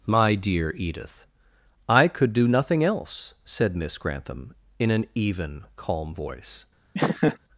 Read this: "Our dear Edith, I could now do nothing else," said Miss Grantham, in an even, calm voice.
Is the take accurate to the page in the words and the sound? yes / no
no